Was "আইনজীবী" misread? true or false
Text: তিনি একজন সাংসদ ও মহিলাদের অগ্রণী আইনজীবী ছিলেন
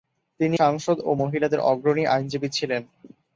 false